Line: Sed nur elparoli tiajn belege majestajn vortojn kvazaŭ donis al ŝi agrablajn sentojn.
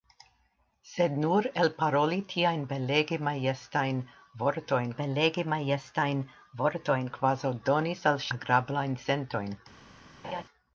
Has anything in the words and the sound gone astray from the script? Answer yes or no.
yes